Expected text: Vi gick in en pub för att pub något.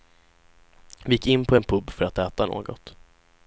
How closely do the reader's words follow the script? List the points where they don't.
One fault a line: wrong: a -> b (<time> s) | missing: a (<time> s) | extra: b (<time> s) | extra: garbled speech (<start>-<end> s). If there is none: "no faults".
extra: på (1.4 s)
wrong: pub -> äta (2.2 s)